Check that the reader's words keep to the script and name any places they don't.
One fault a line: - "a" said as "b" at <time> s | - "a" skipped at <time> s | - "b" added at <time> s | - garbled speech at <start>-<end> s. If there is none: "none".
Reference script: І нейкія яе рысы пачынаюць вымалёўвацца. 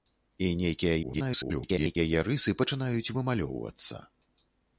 - garbled speech at 1.0-2.0 s